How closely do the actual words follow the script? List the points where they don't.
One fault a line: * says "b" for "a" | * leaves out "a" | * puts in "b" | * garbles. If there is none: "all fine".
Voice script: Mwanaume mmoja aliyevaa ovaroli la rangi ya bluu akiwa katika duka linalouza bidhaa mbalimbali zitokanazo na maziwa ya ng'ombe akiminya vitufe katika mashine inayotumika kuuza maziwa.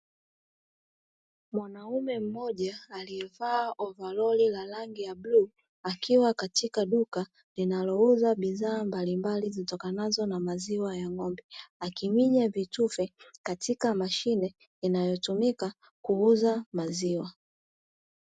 all fine